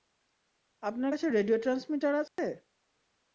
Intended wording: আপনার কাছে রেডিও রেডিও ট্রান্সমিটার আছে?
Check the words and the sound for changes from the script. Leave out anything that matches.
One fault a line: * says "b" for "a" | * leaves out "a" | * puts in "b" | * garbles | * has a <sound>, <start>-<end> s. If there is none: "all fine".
* leaves out "রেডিও"
* has a dropout, 2.3-2.4 s